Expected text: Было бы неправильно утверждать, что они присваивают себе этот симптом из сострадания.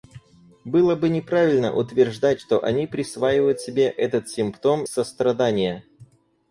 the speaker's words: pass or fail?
fail